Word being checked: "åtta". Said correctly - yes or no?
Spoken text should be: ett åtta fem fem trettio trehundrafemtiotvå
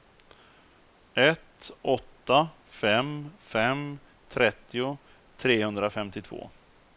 yes